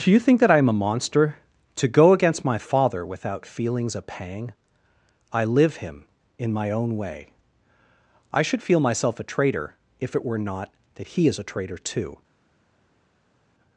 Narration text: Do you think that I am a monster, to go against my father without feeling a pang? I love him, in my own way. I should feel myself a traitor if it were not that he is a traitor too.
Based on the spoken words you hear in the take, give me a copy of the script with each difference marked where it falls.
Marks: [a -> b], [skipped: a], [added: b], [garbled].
Do you think that I am a monster, to go against my father without [feeling -> feelings] a pang? I [love -> live] him, in my own way. I should feel myself a traitor if it were not that he is a traitor too.